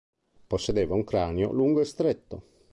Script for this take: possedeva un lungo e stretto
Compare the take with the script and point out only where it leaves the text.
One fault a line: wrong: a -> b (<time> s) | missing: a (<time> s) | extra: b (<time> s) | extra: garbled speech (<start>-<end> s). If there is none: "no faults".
extra: cranio (1.0 s)